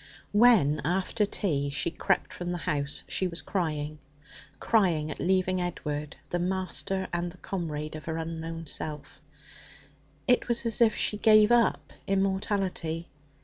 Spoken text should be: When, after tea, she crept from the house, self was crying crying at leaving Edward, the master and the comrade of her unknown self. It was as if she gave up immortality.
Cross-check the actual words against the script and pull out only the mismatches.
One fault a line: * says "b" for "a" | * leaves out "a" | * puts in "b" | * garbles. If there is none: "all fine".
* says "she" for "self"